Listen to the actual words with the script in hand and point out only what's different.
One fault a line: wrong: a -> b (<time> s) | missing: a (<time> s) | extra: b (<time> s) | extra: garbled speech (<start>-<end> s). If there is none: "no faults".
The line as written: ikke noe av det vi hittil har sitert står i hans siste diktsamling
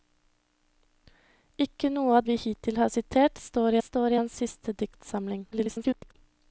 missing: det (2.2 s)
extra: står (3.8 s)
extra: garbled speech (5.5-6.1 s)